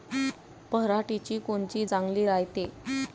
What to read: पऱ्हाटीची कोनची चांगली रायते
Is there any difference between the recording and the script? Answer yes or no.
no